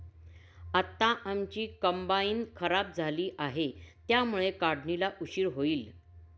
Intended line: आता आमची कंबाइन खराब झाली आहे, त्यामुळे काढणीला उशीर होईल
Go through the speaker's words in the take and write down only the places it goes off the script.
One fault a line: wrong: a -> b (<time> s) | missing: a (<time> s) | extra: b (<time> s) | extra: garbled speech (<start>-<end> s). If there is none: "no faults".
no faults